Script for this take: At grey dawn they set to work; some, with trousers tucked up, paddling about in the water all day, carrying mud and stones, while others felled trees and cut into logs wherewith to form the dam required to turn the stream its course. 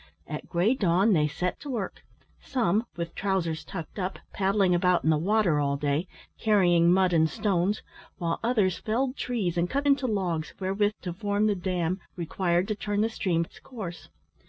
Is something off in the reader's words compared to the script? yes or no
no